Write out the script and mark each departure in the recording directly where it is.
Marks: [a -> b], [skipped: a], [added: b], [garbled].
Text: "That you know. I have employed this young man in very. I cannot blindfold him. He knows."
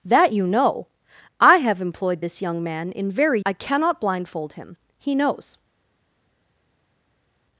"That you know. I have employed this young man in very. I cannot blindfold him. He knows."